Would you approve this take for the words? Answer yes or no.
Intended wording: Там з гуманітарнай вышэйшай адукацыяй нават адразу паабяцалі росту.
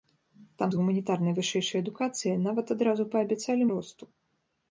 yes